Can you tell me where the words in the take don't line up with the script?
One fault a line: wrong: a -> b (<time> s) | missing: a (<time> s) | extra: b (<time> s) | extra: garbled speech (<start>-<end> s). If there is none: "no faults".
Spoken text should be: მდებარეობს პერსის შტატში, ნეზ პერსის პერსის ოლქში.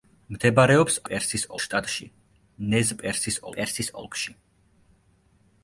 no faults